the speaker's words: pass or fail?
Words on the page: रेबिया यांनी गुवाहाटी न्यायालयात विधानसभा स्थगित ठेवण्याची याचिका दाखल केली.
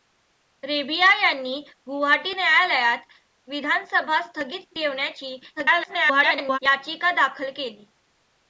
fail